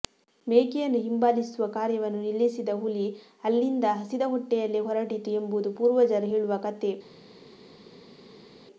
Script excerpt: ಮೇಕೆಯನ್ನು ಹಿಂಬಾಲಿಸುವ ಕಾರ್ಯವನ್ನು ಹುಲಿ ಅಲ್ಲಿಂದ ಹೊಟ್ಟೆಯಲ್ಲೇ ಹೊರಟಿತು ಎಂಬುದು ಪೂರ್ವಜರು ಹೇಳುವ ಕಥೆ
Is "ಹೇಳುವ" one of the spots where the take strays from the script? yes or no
no